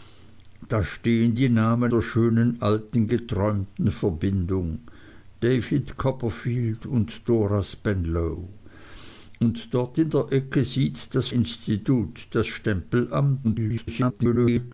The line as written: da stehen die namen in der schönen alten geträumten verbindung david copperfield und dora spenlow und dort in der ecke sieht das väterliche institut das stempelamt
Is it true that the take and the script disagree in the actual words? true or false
true